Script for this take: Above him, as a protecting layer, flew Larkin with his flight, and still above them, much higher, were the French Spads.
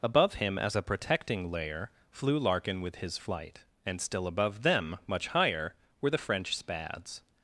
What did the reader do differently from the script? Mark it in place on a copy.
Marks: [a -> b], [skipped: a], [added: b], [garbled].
Above him, as a protecting layer, flew Larkin with his flight, and still above them, much higher, were the French Spads.